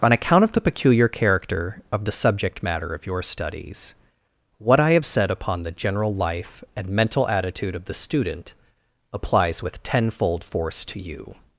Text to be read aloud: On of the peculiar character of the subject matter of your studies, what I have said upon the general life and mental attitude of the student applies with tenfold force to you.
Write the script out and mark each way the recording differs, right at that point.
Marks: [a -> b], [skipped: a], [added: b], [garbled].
On [added: account] of the peculiar character of the subject matter of your studies, what I have said upon the general life and mental attitude of the student applies with tenfold force to you.